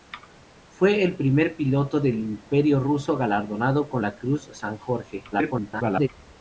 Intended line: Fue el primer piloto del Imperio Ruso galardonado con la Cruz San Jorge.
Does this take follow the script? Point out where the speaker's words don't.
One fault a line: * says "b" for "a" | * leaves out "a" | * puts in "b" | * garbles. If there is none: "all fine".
* garbles